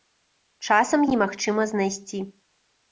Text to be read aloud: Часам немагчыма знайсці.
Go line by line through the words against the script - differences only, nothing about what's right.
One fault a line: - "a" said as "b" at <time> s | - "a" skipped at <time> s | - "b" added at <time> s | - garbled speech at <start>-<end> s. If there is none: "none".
none